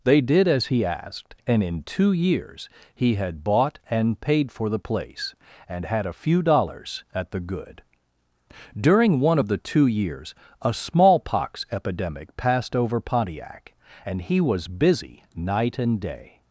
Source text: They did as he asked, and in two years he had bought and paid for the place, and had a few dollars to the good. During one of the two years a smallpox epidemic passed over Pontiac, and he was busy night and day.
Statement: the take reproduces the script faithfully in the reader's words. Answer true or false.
false